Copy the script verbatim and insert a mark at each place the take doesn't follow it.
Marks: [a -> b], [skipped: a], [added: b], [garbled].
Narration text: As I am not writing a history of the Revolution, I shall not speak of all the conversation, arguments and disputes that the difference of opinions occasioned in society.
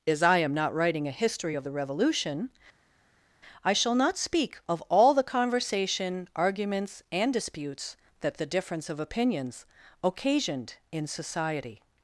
As I am not writing a history of the Revolution, I shall not speak of all the conversation, arguments and disputes that the difference of opinions occasioned in society.